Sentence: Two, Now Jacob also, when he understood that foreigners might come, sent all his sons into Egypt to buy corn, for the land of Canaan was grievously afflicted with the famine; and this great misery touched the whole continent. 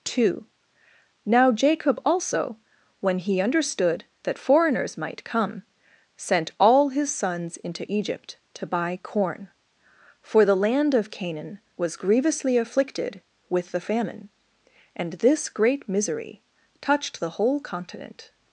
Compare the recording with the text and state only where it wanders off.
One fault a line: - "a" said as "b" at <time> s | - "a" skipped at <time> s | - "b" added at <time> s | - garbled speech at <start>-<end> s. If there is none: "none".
none